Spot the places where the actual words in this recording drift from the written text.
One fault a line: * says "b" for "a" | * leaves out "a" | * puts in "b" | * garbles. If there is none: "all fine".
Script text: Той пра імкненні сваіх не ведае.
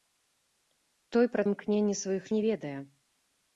all fine